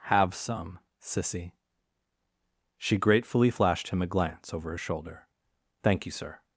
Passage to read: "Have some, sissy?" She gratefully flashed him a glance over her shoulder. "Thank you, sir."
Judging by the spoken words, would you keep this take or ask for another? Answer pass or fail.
pass